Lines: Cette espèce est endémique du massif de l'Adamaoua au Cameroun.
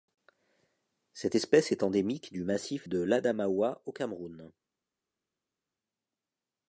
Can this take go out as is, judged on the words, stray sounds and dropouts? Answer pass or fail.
pass